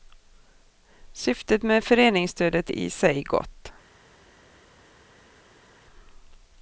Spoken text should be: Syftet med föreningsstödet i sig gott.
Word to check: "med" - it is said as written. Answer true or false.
true